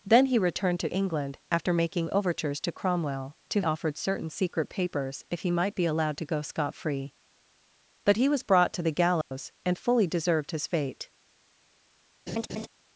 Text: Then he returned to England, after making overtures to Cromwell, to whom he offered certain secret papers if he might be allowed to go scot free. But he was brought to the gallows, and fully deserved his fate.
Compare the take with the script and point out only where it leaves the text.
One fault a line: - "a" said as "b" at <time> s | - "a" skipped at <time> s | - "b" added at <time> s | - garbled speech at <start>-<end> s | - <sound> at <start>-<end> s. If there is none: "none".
- "whom he" skipped at 3.6 s
- dropout at 9.2-9.3 s
- laugh at 12.3-12.7 s